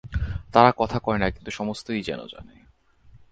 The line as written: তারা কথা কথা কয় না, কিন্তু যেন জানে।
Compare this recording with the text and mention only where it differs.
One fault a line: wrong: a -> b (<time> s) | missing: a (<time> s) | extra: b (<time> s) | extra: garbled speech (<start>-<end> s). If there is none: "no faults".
missing: কথা (1.0 s)
extra: সমস্তই (1.5 s)